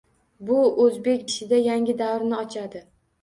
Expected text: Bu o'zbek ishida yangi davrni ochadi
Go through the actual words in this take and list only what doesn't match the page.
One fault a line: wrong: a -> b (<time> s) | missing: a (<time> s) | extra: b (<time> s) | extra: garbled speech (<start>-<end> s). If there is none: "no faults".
no faults